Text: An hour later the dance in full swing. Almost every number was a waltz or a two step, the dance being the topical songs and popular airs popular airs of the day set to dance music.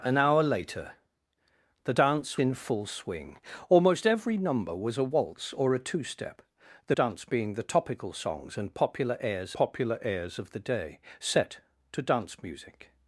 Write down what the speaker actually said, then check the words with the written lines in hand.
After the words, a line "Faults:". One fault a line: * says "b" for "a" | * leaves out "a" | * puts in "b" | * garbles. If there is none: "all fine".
An hour later the dance in full swing. Almost every number was a waltz or a two step, the dance being the topical songs and popular airs popular airs of the day set to dance music.
Faults:
all fine